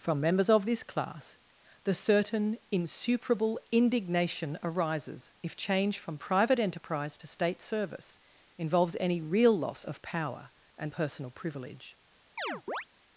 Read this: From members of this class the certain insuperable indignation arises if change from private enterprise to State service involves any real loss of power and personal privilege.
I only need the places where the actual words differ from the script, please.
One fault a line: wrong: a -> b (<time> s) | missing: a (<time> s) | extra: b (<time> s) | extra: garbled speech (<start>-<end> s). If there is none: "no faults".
no faults